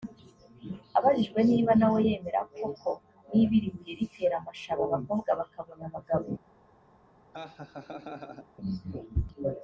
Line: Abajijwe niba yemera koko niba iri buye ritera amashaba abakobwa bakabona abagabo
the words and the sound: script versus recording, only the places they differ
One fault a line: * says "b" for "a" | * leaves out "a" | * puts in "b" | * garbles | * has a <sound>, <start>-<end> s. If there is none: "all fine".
* puts in "nawe"
* has a laugh, 7.3-8.5 s